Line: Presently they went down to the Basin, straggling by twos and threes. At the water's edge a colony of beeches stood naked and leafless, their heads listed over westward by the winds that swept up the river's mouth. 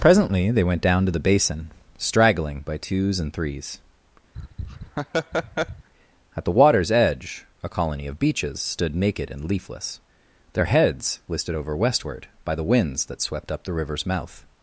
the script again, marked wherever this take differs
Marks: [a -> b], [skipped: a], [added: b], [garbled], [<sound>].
Presently they went down to the Basin, straggling by twos and threes. [laugh] At the water's edge a colony of beeches stood naked and leafless, their heads listed over westward by the winds that swept up the river's mouth.